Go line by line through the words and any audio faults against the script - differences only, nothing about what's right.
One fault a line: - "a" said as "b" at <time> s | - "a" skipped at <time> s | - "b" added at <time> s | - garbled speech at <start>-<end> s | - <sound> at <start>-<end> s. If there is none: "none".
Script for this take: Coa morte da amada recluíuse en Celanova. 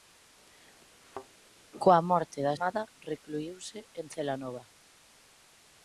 - thud at 1.0-1.3 s